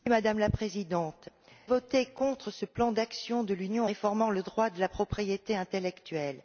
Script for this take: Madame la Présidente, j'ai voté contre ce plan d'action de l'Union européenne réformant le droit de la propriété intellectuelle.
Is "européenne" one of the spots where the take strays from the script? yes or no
yes